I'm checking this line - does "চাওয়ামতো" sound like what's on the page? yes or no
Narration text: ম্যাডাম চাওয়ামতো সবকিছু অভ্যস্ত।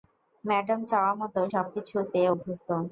yes